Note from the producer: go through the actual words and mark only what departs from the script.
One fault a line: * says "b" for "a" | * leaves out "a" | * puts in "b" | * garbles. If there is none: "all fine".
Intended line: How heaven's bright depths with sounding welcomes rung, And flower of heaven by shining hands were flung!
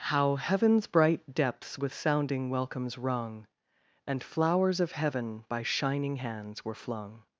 * says "flowers" for "flower"